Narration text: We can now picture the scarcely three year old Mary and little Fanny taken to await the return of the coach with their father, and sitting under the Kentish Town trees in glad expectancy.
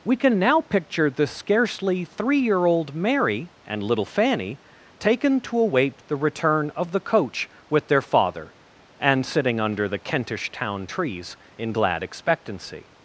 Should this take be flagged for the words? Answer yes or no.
no